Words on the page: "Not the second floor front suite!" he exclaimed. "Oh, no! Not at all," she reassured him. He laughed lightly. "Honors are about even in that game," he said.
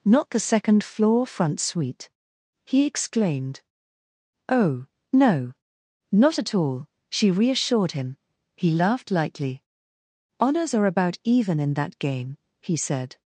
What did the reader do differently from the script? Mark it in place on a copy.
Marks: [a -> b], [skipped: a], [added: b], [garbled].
"Not the second floor front suite!" he exclaimed. "Oh, no! Not at all," she reassured him. He laughed lightly. "Honors are about even in that game," he said.